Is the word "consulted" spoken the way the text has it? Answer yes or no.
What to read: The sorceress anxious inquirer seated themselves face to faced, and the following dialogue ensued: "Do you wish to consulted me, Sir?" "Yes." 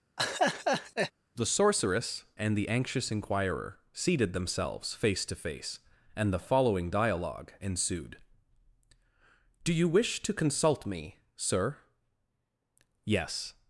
no